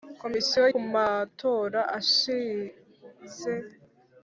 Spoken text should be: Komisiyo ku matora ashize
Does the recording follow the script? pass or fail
pass